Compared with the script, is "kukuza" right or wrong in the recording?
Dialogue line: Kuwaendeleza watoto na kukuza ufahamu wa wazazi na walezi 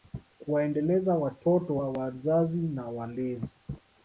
wrong